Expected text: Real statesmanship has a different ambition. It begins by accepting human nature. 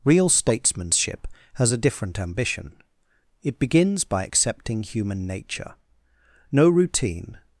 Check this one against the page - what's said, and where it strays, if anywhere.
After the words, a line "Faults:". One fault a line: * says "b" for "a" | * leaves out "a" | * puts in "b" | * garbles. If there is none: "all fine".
Real statesmanship has a different ambition. It begins by accepting human nature. No routine
Faults:
* puts in "No routine"